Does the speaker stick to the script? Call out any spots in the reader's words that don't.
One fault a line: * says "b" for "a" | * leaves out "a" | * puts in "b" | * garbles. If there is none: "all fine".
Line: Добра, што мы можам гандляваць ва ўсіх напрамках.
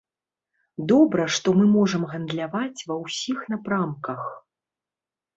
all fine